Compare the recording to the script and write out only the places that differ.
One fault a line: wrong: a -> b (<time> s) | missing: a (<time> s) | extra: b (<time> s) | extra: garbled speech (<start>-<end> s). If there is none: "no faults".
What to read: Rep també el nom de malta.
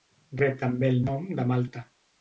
no faults